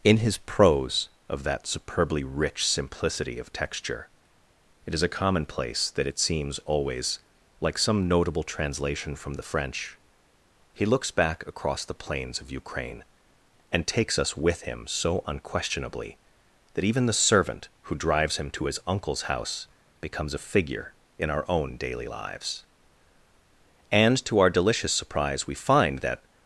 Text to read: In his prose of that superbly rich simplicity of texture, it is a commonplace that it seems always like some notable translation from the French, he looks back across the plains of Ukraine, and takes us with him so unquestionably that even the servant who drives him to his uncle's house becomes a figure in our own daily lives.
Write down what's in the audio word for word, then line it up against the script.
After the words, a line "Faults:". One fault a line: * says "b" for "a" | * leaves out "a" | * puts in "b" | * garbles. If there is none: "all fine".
In his prose of that superbly rich simplicity of texture, it is a commonplace that it seems always like some notable translation from the French, he looks back across the plains of Ukraine, and takes us with him so unquestionably that even the servant who drives him to his uncle's house becomes a figure in our own daily lives. And to our delicious surprise we find that
Faults:
* puts in "And to our delicious surprise we find that"